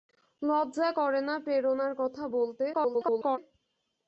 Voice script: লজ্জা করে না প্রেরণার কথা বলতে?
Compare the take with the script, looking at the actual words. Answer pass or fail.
fail